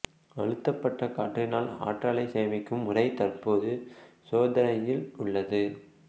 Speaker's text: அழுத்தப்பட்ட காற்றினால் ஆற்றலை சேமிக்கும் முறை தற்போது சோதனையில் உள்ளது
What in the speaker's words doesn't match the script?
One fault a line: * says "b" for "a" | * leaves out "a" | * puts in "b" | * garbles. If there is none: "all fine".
all fine